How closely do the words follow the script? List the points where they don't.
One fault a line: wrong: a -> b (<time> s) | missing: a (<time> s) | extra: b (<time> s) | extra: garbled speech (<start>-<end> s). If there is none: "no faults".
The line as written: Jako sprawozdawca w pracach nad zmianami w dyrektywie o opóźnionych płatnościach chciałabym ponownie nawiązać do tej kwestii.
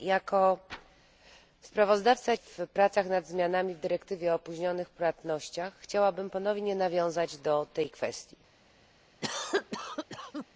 no faults